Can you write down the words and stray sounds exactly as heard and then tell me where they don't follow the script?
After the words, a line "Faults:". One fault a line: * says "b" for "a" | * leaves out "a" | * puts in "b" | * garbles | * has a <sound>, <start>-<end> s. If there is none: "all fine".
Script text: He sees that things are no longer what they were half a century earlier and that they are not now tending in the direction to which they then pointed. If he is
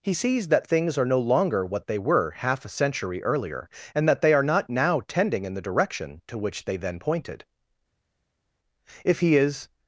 He sees that things are no longer what they were half a century earlier and that they are not now tending in the direction to which they then pointed. If he is
Faults:
all fine